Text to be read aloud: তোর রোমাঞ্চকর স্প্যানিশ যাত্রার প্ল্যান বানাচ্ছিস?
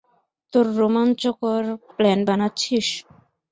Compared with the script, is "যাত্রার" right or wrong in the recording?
wrong